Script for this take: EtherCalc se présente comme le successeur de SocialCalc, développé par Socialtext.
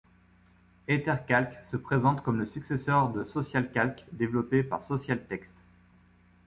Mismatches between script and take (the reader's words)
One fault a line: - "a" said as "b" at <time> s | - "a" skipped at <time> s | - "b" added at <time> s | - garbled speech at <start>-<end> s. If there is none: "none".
none